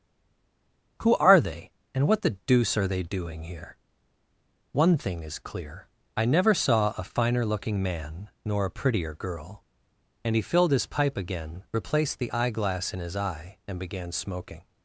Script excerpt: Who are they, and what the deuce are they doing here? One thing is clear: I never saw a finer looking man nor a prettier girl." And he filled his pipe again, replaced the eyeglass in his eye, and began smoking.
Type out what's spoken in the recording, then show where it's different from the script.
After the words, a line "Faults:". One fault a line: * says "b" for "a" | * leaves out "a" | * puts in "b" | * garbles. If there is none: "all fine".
Who are they, and what the deuce are they doing here? One thing is clear: I never saw a finer looking man nor a prettier girl." And he filled his pipe again, replaced the eyeglass in his eye, and began smoking.
Faults:
all fine